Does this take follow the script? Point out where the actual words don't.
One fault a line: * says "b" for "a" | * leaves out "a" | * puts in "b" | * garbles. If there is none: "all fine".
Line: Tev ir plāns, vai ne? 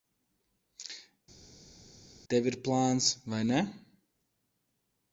all fine